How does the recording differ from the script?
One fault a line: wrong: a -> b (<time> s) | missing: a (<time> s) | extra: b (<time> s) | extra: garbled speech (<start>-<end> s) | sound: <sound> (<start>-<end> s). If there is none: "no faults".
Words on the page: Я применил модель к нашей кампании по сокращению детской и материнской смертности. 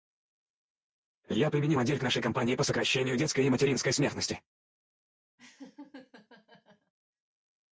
sound: laugh (5.4-6.9 s)